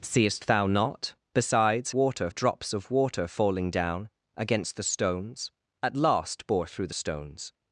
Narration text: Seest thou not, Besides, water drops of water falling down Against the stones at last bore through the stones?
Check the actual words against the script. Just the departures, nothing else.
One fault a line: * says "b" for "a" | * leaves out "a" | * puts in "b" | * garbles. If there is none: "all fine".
all fine